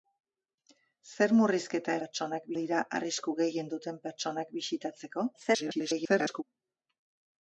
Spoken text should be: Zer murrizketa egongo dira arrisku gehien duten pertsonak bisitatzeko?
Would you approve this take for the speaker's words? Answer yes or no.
no